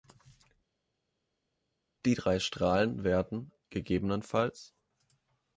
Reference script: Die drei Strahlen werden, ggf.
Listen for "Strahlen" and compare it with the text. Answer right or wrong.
right